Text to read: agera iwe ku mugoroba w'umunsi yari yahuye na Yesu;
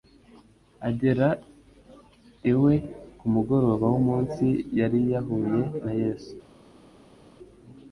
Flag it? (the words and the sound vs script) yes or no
no